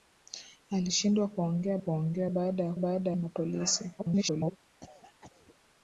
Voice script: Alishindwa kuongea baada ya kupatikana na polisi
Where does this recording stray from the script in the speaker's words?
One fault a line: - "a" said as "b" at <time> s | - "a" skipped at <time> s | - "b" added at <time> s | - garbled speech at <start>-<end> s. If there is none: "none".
- "kuongea" added at 1.8 s
- "kupatikana" said as "baada" at 2.7 s
- garbled speech at 4.0-4.6 s